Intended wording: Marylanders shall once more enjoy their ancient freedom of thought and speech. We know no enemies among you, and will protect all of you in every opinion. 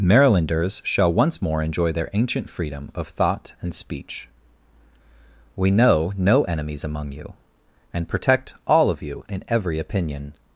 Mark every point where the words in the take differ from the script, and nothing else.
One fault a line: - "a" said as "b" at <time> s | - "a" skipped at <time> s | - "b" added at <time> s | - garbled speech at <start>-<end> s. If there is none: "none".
- "will" skipped at 8.1 s